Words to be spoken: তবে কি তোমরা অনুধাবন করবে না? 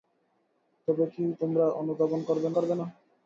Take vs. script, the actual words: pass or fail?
fail